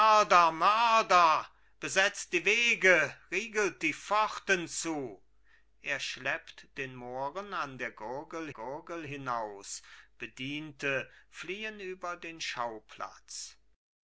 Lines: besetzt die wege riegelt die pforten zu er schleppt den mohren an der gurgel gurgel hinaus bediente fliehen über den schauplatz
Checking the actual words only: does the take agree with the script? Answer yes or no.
yes